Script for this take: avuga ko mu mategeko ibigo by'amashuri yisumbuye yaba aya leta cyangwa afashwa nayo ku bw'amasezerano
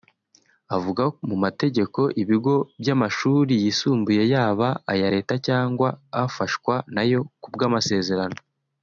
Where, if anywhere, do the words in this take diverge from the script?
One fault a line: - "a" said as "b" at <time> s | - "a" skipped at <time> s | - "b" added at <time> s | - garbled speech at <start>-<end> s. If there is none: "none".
- "ko" skipped at 1.0 s